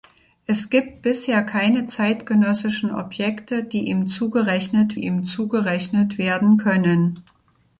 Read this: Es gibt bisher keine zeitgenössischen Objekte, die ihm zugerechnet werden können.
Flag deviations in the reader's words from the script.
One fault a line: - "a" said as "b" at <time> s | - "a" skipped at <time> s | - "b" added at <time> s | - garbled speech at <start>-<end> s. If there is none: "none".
- "ihm zugerechnet" added at 5.0 s